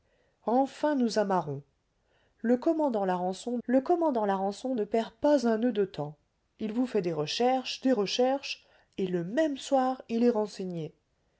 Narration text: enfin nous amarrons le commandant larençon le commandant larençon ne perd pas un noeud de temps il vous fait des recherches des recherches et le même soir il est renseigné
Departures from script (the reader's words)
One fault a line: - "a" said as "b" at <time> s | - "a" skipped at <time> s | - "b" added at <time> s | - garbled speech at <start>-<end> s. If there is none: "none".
none